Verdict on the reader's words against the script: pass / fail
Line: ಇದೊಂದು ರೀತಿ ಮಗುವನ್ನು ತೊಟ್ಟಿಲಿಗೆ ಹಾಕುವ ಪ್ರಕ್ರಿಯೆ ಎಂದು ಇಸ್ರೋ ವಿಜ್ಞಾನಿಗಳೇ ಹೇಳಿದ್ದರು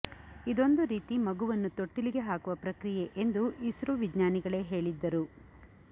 pass